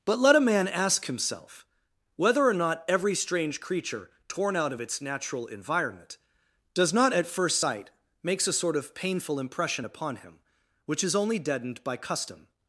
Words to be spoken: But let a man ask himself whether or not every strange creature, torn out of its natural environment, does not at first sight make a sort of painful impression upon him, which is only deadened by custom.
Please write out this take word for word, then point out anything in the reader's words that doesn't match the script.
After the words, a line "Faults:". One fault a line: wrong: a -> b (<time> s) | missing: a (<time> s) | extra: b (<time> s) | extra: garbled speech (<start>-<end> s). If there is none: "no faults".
But let a man ask himself whether or not every strange creature, torn out of its natural environment, does not at first sight makes a sort of painful impression upon him, which is only deadened by custom.
Faults:
wrong: make -> makes (8.2 s)